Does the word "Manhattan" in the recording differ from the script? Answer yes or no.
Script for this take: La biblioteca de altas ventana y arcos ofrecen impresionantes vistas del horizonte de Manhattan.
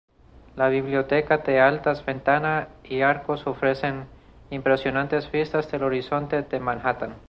no